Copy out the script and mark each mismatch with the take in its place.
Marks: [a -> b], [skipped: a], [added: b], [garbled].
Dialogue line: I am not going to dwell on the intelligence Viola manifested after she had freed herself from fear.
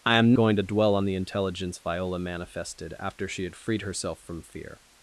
I am [skipped: not] going to dwell on the intelligence Viola manifested after she had freed herself from fear.